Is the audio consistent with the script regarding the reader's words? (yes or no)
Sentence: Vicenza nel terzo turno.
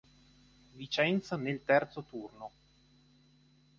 yes